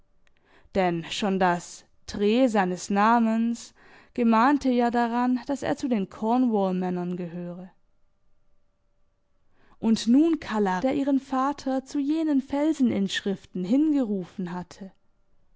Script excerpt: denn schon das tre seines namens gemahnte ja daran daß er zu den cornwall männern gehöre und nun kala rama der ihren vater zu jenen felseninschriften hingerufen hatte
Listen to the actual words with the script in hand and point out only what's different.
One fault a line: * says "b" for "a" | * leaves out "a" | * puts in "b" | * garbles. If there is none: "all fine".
* leaves out "rama"